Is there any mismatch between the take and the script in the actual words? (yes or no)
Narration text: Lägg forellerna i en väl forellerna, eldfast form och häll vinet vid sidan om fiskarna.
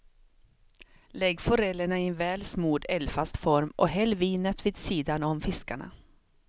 yes